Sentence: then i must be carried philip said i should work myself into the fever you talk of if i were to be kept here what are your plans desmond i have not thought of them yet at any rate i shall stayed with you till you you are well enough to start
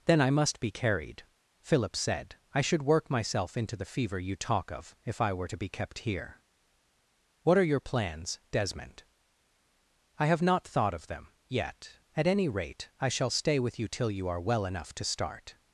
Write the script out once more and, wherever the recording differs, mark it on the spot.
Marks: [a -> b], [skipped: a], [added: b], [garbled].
then i must be carried philip said i should work myself into the fever you talk of if i were to be kept here what are your plans desmond i have not thought of them yet at any rate i shall [stayed -> stay] with you till you [skipped: you] are well enough to start